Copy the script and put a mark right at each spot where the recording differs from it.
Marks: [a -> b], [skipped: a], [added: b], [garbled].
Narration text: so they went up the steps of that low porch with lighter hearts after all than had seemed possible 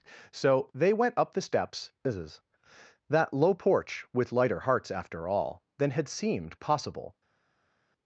so they went up the steps [skipped: of] that low porch with lighter hearts after all than had seemed possible